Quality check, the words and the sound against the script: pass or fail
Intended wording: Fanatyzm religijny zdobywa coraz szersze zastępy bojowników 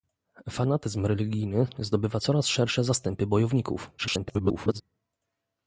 fail